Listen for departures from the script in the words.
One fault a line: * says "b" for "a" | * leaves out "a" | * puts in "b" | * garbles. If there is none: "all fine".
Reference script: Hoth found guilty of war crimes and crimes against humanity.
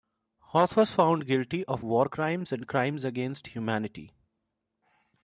* puts in "was"